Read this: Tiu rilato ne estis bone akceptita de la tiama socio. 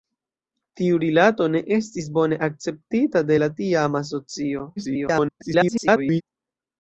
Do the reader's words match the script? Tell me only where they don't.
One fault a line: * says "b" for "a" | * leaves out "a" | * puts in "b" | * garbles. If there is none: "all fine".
* garbles